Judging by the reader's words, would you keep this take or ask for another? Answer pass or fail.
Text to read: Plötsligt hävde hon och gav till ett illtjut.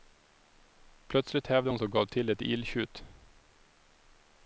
pass